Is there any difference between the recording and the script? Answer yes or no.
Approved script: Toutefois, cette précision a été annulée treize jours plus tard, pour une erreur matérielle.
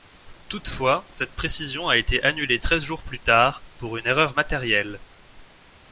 no